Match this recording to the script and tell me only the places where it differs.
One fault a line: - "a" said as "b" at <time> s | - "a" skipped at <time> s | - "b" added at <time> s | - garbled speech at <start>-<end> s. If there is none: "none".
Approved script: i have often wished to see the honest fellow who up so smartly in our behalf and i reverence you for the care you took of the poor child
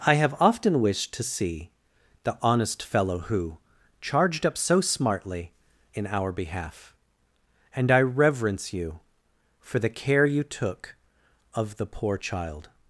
- "charged" added at 4.0 s